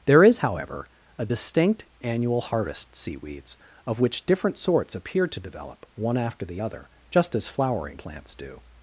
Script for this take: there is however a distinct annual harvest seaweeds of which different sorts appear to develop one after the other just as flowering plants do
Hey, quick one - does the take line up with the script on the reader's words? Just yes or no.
yes